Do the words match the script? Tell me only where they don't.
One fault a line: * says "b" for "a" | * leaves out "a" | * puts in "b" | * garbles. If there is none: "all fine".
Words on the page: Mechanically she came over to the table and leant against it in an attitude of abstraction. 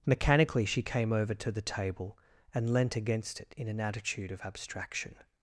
all fine